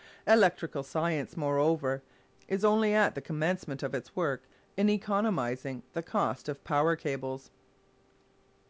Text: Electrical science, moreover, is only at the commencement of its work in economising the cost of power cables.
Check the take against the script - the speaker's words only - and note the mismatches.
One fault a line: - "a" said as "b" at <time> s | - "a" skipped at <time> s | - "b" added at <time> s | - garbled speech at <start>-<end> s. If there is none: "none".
none